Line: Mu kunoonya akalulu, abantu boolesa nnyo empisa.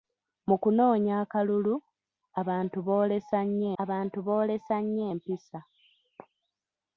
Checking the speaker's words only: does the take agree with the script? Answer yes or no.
no